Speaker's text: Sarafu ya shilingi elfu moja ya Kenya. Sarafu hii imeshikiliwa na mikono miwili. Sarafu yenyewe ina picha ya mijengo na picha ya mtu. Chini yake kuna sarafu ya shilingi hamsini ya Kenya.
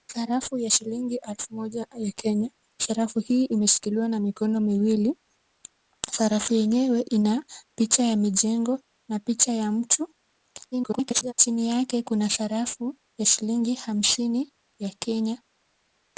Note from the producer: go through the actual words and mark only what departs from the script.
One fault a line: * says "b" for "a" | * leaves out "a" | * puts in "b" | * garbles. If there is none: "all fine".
* garbles